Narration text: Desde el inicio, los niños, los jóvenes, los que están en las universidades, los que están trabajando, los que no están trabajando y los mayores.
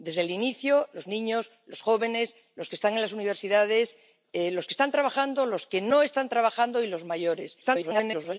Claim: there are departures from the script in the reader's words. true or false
true